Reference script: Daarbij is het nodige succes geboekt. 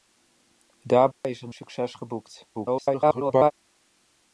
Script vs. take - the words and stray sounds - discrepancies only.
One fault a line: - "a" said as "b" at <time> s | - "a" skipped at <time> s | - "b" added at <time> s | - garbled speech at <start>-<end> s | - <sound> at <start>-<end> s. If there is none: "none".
- dropout at 1.1-1.2 s
- "nodige" skipped at 1.5 s
- garbled speech at 2.5-3.5 s